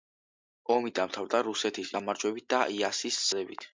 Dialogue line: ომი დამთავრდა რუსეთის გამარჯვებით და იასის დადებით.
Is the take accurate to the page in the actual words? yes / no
yes